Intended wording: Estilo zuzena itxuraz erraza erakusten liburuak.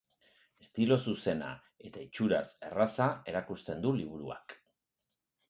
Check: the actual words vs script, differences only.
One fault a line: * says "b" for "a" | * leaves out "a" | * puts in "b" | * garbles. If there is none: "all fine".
* puts in "eta"
* puts in "du"